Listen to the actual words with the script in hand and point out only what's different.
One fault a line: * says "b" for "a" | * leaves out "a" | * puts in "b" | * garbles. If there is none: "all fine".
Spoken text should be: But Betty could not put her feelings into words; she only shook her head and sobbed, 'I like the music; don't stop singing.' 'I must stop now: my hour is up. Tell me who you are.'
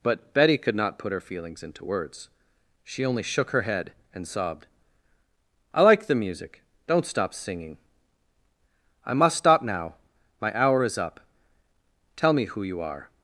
all fine